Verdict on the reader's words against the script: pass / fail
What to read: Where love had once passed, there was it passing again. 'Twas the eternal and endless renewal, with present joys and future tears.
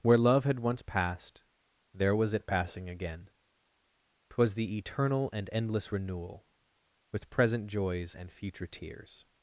pass